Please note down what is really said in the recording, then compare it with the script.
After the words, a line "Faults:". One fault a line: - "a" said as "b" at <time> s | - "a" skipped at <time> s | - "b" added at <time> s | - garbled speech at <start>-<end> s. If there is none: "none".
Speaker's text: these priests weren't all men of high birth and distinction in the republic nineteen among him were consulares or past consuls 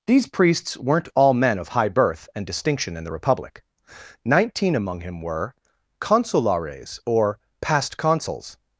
these priests weren't all men of high birth and distinction in the republic nineteen among him were consulares or past consuls
Faults:
none